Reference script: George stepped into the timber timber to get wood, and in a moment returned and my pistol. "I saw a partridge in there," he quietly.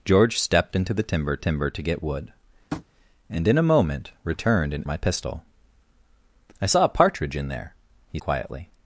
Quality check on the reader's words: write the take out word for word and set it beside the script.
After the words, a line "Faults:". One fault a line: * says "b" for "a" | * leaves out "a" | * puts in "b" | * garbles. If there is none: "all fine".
George stepped into the timber timber to get wood, and in a moment returned and my pistol. "I saw a partridge in there," he quietly.
Faults:
all fine